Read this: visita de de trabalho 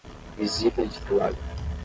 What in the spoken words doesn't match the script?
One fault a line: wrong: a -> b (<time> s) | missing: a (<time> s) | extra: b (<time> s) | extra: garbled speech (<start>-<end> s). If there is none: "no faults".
no faults